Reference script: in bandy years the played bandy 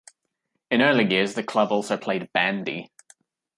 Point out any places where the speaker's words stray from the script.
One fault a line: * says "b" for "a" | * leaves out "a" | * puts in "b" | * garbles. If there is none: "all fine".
* says "early" for "bandy"
* puts in "club also"